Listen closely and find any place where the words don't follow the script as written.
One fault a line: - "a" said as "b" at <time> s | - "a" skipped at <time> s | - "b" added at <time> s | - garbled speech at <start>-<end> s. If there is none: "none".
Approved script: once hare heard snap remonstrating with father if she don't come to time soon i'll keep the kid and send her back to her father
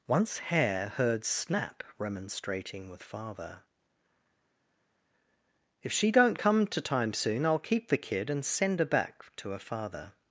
none